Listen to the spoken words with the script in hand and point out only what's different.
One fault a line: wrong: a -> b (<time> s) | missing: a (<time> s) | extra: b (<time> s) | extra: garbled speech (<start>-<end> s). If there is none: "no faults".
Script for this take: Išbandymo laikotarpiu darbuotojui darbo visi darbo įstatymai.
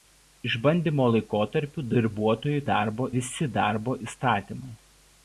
no faults